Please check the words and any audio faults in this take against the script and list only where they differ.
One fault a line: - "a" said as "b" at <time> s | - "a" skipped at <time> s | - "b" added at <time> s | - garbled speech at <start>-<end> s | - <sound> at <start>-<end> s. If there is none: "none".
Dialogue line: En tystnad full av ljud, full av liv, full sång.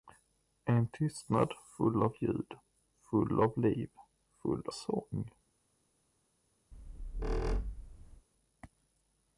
- squeak at 6.7-8.3 s